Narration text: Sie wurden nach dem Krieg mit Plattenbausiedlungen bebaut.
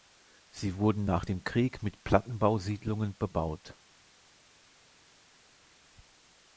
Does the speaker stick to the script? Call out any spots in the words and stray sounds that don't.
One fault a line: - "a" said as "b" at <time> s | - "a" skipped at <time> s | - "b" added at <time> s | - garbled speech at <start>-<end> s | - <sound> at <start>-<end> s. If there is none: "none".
none